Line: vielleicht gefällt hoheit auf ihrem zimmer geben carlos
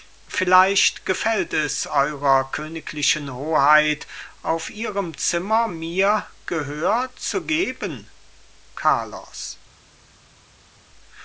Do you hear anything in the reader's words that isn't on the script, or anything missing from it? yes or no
yes